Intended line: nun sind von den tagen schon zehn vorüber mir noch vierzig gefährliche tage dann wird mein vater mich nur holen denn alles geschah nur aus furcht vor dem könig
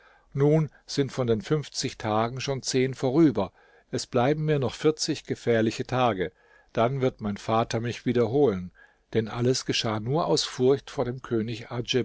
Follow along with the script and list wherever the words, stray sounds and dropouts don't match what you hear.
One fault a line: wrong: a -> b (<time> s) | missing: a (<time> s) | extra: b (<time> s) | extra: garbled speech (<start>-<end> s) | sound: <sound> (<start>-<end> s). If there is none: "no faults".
extra: fünfzig (1.4 s)
extra: es bleiben (3.9 s)
wrong: nur -> wieder (8.1 s)